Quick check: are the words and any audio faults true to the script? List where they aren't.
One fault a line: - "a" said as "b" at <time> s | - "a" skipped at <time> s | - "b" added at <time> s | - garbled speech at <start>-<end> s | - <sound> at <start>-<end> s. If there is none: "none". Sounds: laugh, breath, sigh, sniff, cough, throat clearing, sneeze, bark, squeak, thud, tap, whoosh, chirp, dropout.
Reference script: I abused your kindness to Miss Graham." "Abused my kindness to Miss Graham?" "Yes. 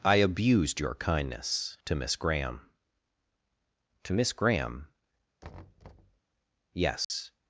- "Abused my kindness" skipped at 2.6 s
- thud at 5.4-6.2 s
- dropout at 7.0-7.1 s